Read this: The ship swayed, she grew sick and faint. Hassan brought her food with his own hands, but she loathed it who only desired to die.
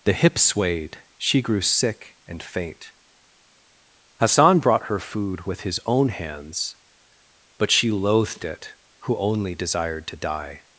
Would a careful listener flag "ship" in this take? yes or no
yes